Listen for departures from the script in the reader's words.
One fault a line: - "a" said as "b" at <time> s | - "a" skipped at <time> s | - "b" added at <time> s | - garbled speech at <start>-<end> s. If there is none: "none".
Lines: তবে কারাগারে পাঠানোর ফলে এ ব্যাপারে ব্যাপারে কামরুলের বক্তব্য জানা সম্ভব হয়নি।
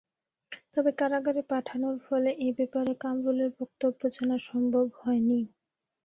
- "ব্যাপারে" skipped at 2.9 s